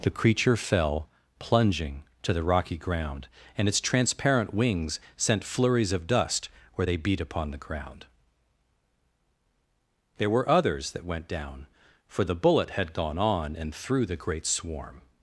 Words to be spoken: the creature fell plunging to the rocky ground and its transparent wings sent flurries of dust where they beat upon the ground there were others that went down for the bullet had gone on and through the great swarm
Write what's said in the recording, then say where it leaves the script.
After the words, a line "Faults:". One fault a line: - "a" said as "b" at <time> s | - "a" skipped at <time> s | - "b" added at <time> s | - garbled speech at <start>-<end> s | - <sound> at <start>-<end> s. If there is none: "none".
the creature fell plunging to the rocky ground and its transparent wings sent flurries of dust where they beat upon the ground there were others that went down for the bullet had gone on and through the great swarm
Faults:
none